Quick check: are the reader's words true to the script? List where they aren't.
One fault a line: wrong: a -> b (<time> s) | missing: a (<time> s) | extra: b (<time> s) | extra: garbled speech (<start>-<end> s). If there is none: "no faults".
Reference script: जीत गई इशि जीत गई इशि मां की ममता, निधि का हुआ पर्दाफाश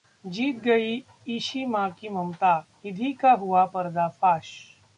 missing: जीत गई इशि (1.6 s)